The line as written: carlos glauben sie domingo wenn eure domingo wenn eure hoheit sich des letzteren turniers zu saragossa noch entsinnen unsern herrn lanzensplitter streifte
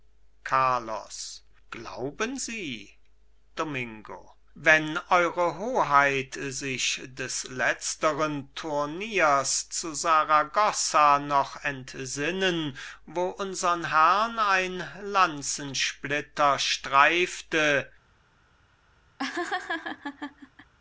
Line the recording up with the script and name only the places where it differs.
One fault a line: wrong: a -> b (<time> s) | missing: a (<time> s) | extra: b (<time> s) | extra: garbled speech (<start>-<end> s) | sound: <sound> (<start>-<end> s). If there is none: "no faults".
missing: domingo wenn eure (5.6 s)
extra: wo (13.1 s)
extra: ein (14.4 s)
sound: laugh (19.2-20.7 s)